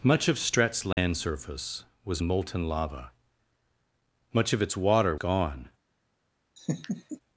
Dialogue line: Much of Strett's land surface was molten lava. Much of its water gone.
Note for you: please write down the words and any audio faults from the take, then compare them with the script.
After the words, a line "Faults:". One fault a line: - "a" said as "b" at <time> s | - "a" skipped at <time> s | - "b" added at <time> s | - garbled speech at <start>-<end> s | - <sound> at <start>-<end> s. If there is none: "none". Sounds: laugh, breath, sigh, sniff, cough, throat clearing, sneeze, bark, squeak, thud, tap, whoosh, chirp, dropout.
Much of Strett's land surface was molten lava. Much of its water gone.
Faults:
- dropout at 0.9-1.0 s
- laugh at 6.6-7.2 s